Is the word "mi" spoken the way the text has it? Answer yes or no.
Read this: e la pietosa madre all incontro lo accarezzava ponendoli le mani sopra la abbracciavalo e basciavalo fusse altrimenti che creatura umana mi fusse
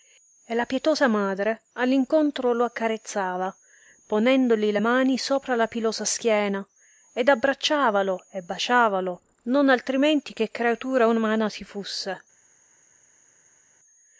no